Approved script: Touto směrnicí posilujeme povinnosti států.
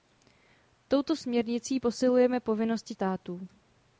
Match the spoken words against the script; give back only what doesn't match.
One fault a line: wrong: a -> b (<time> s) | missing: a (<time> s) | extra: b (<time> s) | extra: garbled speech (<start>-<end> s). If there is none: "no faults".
no faults